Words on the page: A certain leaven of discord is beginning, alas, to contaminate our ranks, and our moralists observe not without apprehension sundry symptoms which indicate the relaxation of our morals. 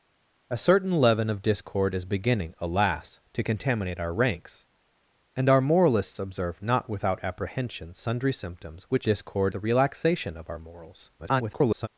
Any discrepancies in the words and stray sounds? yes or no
yes